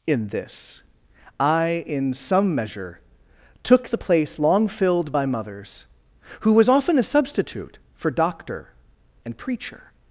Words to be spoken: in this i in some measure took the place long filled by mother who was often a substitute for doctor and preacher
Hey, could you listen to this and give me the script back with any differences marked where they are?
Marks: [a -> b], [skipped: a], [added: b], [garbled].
in this i in some measure took the place long filled by [mother -> mothers] who was often a substitute for doctor and preacher